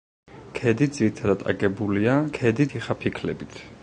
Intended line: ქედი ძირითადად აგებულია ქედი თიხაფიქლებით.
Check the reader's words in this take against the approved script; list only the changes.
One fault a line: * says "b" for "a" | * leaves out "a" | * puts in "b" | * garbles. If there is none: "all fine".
all fine